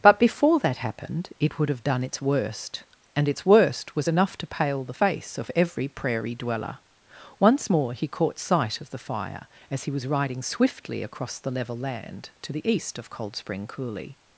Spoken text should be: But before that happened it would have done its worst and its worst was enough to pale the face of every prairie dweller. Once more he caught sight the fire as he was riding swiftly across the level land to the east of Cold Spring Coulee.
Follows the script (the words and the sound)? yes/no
no